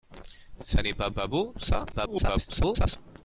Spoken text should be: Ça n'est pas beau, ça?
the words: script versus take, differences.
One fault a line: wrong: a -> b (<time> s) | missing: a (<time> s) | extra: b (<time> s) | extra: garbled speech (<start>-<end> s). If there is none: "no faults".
extra: pas (1.1 s)
extra: garbled speech (1.9-3.0 s)